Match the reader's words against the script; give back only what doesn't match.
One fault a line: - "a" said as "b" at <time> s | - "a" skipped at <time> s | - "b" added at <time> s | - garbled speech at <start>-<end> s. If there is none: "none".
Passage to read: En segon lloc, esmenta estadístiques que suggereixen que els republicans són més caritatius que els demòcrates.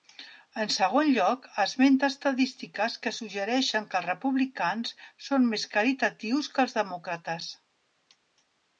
none